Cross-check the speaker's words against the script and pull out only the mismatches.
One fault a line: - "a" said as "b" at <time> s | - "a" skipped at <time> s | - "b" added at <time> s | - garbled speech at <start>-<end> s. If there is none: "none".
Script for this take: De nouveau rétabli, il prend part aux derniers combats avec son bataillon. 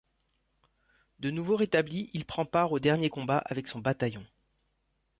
none